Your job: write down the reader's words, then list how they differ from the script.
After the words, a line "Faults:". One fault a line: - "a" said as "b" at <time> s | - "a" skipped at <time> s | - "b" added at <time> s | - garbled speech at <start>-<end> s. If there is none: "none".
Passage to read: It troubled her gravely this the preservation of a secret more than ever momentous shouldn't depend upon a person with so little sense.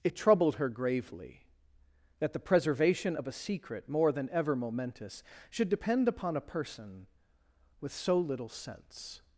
It troubled her gravely that the preservation of a secret more than ever momentous should depend upon a person with so little sense.
Faults:
- "this" said as "that" at 2.2 s
- "shouldn't" said as "should" at 5.5 s